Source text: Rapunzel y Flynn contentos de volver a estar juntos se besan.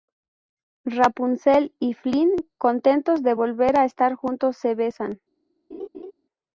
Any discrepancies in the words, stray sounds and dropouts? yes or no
yes